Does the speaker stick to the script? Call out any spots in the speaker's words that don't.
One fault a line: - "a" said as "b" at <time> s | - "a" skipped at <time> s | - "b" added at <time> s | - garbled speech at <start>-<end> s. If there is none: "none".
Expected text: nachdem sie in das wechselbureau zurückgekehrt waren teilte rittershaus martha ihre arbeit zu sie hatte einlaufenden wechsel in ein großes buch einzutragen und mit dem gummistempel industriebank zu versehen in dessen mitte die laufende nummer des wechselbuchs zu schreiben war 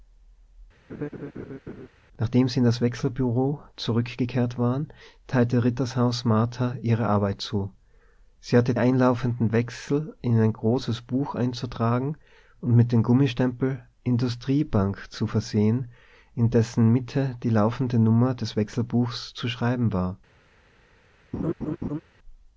none